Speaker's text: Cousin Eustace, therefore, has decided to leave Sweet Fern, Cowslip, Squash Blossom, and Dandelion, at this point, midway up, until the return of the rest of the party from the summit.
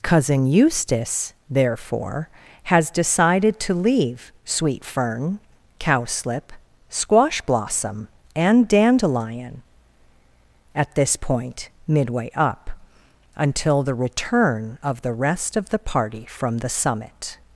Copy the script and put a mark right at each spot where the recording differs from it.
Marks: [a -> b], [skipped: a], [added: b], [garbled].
Cousin Eustace, therefore, has decided to leave Sweet Fern, Cowslip, Squash Blossom, and Dandelion, at this point, midway up, until the return of the rest of the party from the summit.